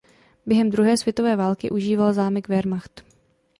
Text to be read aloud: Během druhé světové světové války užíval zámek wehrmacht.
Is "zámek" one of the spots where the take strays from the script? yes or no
no